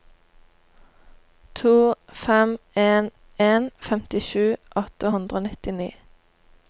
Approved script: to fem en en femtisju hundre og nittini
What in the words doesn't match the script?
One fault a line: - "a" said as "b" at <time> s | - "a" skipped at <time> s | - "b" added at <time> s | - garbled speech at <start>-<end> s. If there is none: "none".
- "åtte" added at 4.8 s